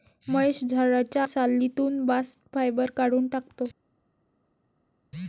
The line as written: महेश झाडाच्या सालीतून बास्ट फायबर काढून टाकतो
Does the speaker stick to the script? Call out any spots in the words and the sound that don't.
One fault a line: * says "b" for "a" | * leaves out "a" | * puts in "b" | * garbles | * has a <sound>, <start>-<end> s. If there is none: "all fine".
all fine